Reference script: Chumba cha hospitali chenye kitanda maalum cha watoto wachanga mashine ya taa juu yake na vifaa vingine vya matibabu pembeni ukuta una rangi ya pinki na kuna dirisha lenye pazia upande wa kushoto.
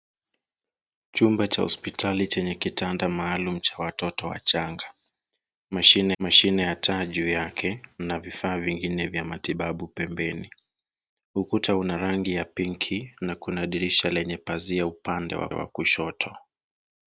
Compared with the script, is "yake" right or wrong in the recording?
right